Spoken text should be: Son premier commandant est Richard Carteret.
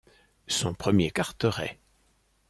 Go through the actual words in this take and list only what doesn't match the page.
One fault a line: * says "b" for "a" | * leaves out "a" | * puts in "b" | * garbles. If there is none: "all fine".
* leaves out "commandant est Richard"